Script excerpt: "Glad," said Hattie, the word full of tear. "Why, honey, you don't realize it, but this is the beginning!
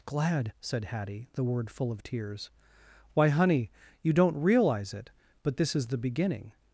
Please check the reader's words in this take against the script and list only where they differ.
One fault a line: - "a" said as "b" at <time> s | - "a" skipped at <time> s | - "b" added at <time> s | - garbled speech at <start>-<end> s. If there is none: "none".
- "tear" said as "tears" at 2.0 s